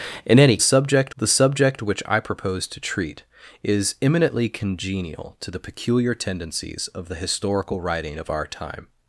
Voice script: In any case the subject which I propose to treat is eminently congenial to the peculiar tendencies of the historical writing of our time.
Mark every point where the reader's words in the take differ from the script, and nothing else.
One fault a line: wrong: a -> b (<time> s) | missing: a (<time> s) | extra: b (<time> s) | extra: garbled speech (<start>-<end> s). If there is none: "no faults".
wrong: case -> subject (0.6 s)